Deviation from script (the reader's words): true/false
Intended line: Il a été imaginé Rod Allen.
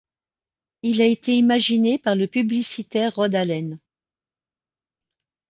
true